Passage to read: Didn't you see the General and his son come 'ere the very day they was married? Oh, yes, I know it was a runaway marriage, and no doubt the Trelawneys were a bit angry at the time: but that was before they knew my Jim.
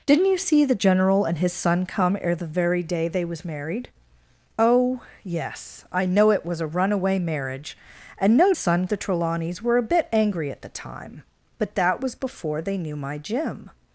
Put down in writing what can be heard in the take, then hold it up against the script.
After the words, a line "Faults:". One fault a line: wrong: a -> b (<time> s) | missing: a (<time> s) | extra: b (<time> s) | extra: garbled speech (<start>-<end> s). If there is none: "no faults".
Didn't you see the General and his son come 'ere the very day they was married? Oh, yes, I know it was a runaway marriage, and no son the Trelawneys were a bit angry at the time: but that was before they knew my Jim.
Faults:
wrong: doubt -> son (8.5 s)